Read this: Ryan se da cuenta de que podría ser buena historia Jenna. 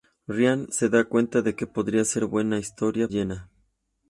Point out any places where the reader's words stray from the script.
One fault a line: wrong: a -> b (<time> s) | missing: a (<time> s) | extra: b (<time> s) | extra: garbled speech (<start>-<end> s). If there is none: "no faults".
no faults